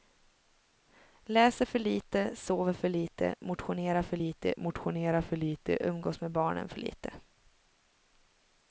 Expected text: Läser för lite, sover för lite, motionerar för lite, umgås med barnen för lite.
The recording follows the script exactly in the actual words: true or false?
false